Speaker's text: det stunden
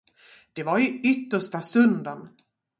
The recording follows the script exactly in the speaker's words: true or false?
false